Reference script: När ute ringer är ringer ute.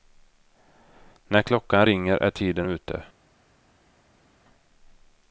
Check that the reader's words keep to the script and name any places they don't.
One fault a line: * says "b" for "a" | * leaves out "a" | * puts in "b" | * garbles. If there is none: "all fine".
* says "klockan" for "ute"
* says "tiden" for "ringer"